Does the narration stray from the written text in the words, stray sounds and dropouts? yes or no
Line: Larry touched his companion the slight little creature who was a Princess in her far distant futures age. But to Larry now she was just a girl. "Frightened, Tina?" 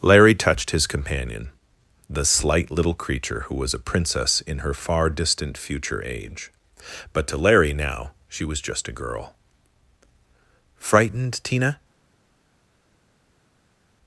yes